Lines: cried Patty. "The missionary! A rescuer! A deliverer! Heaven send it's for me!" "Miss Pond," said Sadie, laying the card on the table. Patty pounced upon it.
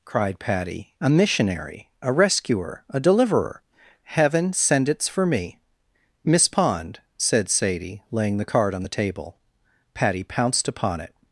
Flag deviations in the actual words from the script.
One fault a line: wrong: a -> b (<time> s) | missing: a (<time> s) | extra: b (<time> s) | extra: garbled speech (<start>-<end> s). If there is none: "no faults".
wrong: The -> A (1.0 s)